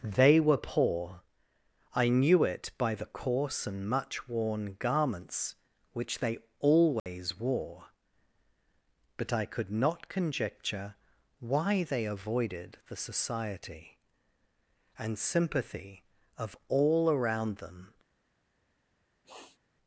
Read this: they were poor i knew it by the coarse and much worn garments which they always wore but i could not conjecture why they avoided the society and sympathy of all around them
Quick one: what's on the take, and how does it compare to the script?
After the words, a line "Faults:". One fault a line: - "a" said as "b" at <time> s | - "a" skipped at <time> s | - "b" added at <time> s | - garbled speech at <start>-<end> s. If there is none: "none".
they were poor i knew it by the coarse and much worn garments which they always wore but i could not conjecture why they avoided the society and sympathy of all around them
Faults:
none